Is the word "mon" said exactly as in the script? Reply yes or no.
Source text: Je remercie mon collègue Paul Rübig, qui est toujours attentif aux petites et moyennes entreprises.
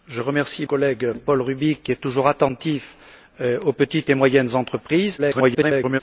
no